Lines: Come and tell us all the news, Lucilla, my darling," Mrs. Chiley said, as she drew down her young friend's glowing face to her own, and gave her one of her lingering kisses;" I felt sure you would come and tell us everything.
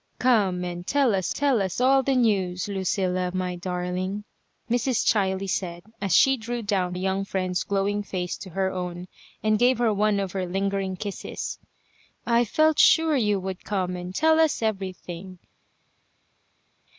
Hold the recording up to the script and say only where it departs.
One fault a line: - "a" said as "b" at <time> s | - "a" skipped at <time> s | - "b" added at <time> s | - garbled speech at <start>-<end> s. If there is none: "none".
- "tell us" added at 1.3 s
- "her" skipped at 6.9 s